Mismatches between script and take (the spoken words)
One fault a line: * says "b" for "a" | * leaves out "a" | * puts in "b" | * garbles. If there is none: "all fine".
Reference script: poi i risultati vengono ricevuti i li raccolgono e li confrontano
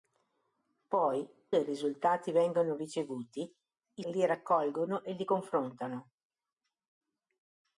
all fine